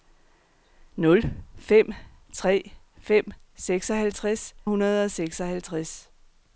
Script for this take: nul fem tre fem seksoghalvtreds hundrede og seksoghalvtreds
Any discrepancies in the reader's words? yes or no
no